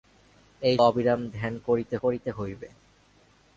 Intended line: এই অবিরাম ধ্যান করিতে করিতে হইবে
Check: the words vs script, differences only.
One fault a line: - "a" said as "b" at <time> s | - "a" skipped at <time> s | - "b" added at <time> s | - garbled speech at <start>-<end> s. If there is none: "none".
none